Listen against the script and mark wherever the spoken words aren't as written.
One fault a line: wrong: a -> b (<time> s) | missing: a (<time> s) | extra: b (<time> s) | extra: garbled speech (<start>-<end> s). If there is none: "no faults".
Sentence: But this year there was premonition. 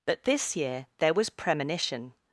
no faults